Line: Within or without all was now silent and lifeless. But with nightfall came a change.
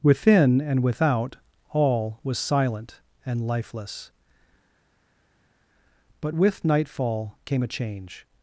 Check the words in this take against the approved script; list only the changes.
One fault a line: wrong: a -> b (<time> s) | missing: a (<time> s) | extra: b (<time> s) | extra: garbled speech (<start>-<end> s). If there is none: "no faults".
wrong: or -> and (0.6 s)
missing: now (2.4 s)